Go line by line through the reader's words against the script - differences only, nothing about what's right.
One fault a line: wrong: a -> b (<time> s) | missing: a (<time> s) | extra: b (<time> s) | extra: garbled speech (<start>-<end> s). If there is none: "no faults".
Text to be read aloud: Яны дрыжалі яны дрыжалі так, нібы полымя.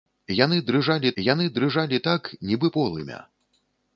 no faults